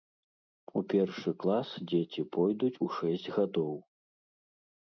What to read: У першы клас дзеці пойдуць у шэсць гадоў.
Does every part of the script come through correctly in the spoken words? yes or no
yes